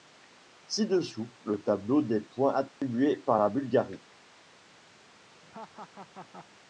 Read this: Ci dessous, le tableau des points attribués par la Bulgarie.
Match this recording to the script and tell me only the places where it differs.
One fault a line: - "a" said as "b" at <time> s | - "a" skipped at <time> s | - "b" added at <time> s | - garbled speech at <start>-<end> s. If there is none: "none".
none